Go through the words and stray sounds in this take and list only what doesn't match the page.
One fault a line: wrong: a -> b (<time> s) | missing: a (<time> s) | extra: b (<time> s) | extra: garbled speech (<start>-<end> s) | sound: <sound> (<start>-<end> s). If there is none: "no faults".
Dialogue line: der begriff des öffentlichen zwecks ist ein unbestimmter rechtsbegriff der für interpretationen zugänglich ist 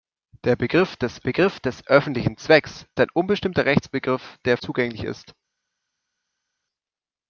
extra: begriff des (1.2 s)
missing: ist (2.9 s)
missing: für interpretationen (4.6 s)